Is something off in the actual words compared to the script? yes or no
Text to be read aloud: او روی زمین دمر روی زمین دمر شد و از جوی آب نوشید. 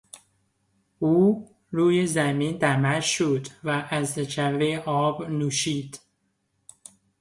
yes